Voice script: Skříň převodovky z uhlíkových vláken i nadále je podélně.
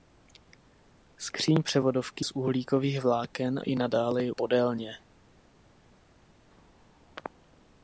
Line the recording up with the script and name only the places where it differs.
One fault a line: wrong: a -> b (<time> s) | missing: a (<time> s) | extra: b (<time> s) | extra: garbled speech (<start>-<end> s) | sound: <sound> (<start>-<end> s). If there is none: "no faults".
no faults